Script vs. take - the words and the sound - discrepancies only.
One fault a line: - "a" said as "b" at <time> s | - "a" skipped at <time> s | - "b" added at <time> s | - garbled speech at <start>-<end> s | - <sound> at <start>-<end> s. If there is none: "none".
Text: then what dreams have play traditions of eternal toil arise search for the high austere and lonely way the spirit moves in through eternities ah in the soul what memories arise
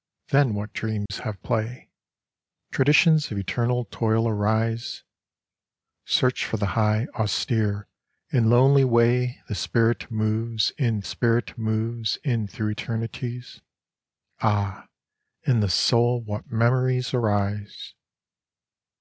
- dropout at 1.1-1.1 s
- "spirit moves in" added at 11.0 s